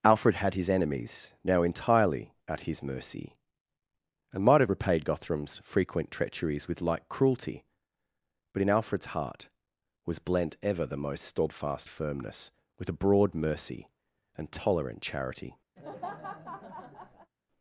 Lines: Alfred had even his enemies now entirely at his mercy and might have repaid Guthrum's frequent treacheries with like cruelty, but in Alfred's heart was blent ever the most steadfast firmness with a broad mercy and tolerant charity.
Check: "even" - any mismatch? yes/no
yes